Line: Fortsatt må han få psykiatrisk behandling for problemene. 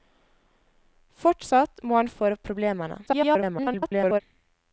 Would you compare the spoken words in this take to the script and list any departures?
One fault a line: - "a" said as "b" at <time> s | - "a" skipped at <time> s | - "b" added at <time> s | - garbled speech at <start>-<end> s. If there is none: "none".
- "få psykiatrisk behandling" skipped at 2.1 s
- garbled speech at 3.1-4.2 s